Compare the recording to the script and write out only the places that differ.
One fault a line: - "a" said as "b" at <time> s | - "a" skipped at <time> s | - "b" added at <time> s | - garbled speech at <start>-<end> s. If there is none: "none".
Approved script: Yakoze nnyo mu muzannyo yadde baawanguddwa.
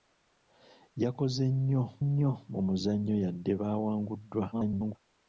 - "nnyo" added at 2.0 s
- garbled speech at 4.5-5.0 s